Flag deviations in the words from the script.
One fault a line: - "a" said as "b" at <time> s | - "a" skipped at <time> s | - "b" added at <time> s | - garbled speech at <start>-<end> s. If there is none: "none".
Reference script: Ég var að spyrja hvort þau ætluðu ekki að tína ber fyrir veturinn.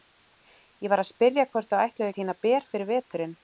- "ekki" skipped at 2.1 s